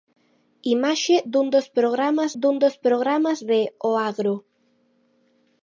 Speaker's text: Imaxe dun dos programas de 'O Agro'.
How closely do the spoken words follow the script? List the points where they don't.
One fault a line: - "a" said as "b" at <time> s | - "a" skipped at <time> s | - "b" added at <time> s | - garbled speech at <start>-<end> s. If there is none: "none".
- "dun dos programas" added at 2.4 s